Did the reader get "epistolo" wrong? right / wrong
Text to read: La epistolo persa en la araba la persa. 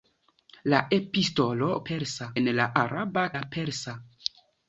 right